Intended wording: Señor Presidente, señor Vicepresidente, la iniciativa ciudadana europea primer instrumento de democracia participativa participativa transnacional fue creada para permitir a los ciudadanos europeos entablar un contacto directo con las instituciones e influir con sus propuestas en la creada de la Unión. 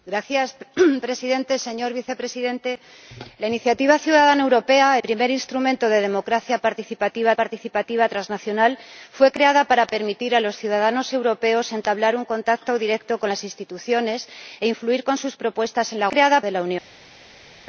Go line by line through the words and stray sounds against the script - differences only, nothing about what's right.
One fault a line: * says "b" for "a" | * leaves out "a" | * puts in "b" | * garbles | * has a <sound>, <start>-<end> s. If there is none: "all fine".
all fine